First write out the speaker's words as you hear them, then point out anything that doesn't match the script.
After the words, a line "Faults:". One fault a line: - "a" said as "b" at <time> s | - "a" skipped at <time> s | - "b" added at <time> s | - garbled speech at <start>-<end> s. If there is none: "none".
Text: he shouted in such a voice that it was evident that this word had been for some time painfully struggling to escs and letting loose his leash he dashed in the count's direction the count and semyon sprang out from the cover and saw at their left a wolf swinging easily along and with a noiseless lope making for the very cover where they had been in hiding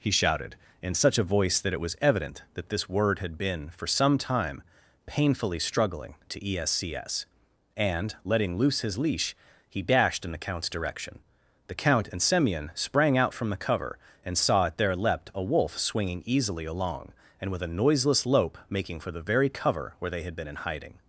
he shouted in such a voice that it was evident that this word had been for some time painfully struggling to escs and letting loose his leash he dashed in the count's direction the count and semyon sprang out from the cover and saw at their leapt a wolf swinging easily along and with a noiseless lope making for the very cover where they had been in hiding
Faults:
- "left" said as "leapt" at 15.0 s